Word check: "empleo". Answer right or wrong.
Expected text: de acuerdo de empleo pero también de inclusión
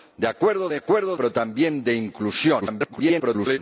wrong